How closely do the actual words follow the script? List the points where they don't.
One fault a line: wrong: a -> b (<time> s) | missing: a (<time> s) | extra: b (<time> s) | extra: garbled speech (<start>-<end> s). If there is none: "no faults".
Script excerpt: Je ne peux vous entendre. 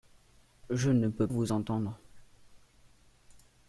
no faults